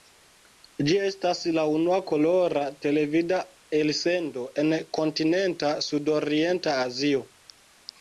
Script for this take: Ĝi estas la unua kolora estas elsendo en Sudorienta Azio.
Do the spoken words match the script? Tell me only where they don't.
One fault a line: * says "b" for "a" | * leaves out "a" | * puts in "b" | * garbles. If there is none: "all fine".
* says "televida" for "estas"
* puts in "Kontinenta"